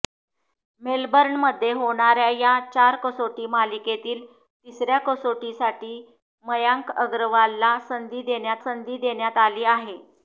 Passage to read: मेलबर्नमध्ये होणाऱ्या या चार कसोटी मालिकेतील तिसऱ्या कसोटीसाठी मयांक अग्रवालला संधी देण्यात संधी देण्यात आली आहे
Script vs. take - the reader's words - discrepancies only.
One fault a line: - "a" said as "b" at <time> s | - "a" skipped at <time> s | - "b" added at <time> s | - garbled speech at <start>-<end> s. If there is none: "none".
none